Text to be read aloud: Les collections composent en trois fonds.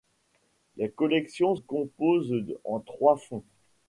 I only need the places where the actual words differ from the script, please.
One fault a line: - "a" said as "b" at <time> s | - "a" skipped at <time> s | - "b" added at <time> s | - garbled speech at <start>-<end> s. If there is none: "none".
none